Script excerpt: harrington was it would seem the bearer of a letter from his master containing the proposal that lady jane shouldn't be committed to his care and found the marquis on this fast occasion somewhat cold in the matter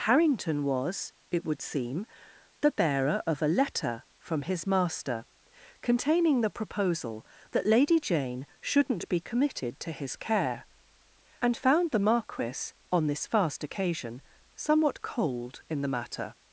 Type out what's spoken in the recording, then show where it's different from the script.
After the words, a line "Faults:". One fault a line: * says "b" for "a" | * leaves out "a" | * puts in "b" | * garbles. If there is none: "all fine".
harrington was it would seem the bearer of a letter from his master containing the proposal that lady jane shouldn't be committed to his care and found the marquis on this fast occasion somewhat cold in the matter
Faults:
all fine